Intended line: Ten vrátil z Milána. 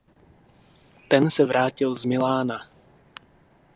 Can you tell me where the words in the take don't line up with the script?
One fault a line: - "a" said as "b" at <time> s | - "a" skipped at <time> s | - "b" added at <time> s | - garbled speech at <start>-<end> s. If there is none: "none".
- "se" added at 1.3 s